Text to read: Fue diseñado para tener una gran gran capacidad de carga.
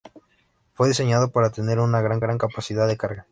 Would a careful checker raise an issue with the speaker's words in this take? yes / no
no